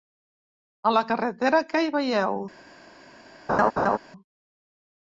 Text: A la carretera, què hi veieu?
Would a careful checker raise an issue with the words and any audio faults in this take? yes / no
yes